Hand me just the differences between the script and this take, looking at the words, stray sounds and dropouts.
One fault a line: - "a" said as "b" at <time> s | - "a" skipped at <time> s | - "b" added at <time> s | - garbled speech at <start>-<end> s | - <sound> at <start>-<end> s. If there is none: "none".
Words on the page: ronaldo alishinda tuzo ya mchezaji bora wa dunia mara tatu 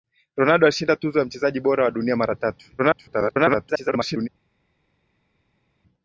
- garbled speech at 2.8-4.3 s